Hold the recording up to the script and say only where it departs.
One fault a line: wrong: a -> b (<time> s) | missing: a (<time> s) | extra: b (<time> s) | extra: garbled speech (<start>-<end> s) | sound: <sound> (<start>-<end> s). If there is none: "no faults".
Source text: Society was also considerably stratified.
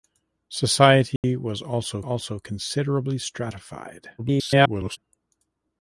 sound: dropout (1.2-1.2 s)
extra: also (2.0 s)
extra: garbled speech (4.2-5.0 s)